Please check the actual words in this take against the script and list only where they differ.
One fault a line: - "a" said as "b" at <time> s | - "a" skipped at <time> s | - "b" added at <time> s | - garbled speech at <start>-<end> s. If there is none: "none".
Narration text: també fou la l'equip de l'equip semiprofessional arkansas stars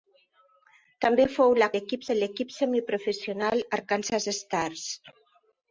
none